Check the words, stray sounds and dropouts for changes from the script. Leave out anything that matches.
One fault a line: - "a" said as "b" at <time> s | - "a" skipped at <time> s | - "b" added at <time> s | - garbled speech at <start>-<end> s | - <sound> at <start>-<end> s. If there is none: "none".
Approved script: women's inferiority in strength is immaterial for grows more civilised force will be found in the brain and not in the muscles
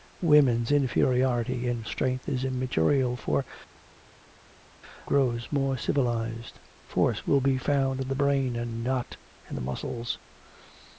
none